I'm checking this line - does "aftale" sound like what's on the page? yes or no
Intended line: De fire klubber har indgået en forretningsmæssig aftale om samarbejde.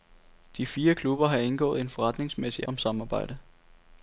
no